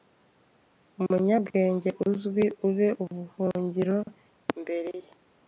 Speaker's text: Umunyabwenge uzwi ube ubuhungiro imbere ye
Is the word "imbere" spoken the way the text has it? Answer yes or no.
yes